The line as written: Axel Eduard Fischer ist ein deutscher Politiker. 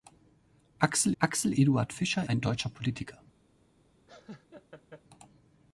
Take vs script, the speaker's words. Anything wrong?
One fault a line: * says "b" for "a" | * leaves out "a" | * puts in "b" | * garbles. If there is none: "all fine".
* puts in "axel"
* leaves out "ist"